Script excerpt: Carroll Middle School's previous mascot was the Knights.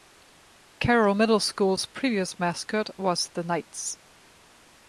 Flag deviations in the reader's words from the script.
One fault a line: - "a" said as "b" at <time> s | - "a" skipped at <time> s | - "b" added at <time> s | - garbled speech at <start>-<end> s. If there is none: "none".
none